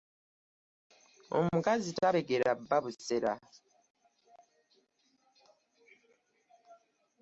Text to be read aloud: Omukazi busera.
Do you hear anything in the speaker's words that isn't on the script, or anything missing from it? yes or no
yes